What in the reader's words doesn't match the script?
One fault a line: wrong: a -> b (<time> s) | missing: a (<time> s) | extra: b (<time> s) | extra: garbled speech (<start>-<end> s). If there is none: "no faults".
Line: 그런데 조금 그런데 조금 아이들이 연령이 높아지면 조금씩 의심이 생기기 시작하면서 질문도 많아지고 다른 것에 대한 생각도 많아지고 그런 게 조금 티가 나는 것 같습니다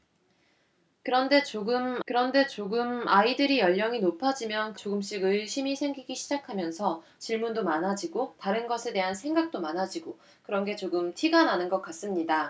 no faults